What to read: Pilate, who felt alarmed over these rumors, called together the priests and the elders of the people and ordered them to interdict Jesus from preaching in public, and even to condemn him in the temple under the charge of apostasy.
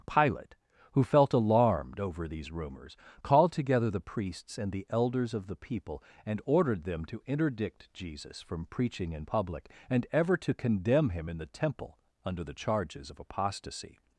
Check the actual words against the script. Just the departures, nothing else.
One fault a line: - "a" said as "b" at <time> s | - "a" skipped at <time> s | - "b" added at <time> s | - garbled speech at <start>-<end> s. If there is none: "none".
- "even" said as "ever" at 10.1 s
- "charge" said as "charges" at 12.5 s